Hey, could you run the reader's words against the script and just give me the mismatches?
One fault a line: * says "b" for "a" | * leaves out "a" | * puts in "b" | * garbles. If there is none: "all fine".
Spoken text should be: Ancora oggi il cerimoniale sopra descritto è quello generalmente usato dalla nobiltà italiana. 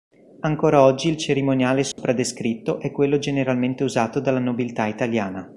all fine